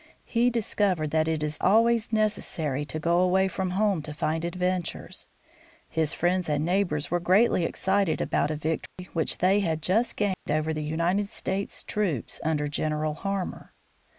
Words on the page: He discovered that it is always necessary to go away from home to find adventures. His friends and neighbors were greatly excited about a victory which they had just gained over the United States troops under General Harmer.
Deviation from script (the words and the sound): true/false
true